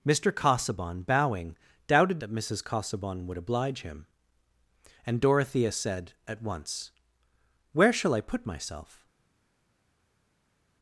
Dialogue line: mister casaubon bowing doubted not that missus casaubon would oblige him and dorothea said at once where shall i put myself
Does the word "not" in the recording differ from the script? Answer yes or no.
yes